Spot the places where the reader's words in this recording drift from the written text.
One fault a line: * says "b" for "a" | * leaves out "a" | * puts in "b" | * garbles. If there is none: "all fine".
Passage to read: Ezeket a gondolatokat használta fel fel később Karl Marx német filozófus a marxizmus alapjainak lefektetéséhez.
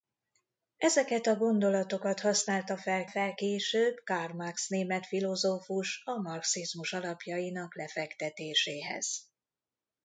all fine